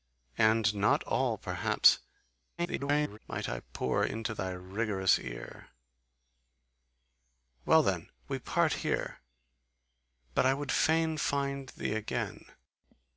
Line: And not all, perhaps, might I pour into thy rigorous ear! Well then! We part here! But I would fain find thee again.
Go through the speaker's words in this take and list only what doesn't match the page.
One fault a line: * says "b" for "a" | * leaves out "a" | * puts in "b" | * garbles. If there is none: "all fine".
* garbles